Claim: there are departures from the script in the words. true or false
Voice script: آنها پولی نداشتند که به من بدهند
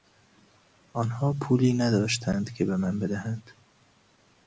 false